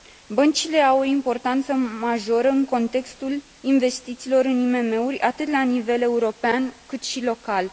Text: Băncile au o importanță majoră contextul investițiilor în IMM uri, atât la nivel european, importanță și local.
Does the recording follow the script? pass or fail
fail